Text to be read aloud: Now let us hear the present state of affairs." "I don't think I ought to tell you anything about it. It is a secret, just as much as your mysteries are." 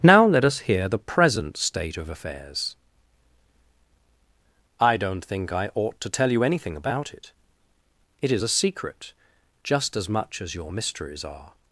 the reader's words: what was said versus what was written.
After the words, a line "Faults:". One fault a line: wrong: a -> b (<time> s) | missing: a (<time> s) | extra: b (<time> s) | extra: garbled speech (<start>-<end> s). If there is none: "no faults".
Now let us hear the present state of affairs." "I don't think I ought to tell you anything about it. It is a secret, just as much as your mysteries are."
Faults:
no faults